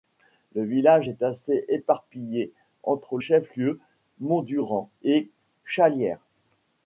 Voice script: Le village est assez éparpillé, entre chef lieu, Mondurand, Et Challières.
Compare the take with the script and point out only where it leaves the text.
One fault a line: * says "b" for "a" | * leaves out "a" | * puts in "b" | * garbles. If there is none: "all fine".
all fine